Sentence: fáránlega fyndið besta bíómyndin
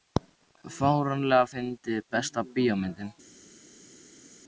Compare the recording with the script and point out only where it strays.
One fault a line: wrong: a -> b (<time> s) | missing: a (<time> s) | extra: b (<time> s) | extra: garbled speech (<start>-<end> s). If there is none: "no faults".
no faults